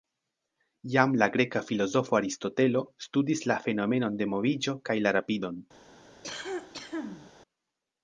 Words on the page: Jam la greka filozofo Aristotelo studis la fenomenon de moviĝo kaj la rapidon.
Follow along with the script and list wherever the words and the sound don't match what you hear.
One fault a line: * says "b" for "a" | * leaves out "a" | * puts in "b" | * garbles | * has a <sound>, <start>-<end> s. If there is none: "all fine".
* has a cough, 6.2-7.3 s